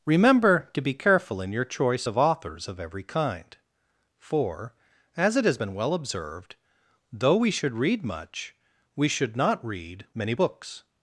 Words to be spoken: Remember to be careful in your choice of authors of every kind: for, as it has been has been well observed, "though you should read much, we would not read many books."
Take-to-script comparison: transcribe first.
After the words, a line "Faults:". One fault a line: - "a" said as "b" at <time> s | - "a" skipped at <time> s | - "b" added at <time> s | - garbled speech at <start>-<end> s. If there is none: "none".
Remember to be careful in your choice of authors of every kind: for, as it has been well observed, "though we should read much, we should not read many books."
Faults:
- "has been" skipped at 5.7 s
- "you" said as "we" at 7.4 s
- "would" said as "should" at 9.1 s